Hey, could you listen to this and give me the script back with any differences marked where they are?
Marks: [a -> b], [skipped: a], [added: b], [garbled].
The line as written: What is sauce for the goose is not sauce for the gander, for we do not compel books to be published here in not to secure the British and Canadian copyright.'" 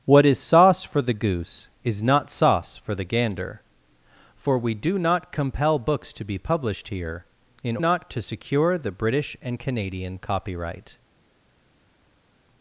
What is sauce for the goose is not sauce for the gander, for we do not compel books to be published here in not to secure the British and Canadian copyright.'"